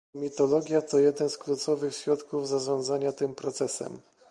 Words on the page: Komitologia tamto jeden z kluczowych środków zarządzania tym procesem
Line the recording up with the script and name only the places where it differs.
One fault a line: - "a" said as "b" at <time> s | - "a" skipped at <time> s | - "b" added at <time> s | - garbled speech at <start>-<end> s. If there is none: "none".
- "tamto" said as "to" at 0.8 s